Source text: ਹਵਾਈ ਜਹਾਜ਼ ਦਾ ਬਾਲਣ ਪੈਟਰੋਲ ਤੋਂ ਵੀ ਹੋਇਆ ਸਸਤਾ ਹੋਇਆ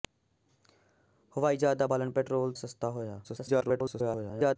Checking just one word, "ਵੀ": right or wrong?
wrong